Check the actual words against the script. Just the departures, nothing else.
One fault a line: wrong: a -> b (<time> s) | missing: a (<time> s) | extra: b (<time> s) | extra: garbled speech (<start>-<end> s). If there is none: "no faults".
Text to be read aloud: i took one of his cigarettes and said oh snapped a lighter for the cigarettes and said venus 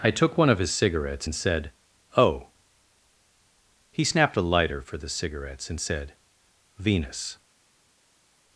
extra: he (3.9 s)